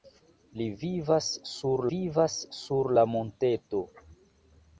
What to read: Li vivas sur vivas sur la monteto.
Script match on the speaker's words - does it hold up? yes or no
yes